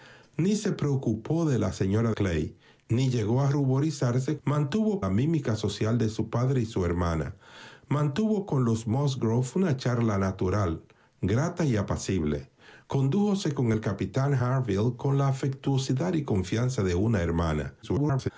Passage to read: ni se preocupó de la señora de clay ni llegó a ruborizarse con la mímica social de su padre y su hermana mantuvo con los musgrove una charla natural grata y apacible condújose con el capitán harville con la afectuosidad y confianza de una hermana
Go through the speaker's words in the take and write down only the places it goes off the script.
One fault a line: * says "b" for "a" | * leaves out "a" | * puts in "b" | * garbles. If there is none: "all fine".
* leaves out "de"
* says "mantuvo" for "con"
* garbles